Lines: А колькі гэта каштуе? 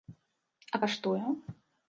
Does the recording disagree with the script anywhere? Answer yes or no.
yes